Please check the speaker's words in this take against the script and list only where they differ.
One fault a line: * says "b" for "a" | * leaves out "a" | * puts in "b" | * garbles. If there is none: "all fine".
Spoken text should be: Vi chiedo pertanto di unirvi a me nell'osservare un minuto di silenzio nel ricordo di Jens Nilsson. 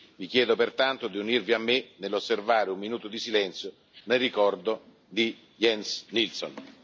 all fine